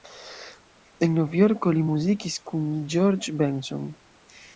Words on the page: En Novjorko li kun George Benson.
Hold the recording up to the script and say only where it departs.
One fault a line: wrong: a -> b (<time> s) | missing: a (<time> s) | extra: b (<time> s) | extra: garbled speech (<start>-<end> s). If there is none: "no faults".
extra: muzikis (1.9 s)